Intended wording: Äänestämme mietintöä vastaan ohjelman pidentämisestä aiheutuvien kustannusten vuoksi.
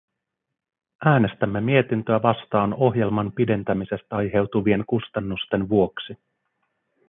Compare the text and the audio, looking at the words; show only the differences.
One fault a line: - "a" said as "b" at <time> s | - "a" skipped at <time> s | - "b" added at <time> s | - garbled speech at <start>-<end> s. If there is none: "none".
none